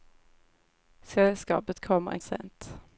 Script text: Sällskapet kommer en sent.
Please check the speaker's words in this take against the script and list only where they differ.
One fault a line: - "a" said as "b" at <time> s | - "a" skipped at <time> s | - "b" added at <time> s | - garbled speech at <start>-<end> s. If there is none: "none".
none